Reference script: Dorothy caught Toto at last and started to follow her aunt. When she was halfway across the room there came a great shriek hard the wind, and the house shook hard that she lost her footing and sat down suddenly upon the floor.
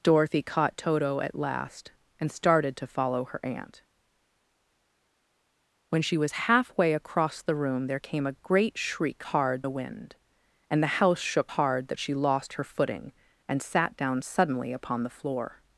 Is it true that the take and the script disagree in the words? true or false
false